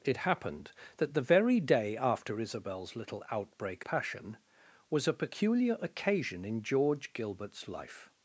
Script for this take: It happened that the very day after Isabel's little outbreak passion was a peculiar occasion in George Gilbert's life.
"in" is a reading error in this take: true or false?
false